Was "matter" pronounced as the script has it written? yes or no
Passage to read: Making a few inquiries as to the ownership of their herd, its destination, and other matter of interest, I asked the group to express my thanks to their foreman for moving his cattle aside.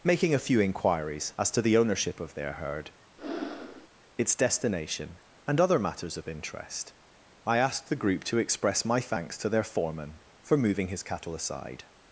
no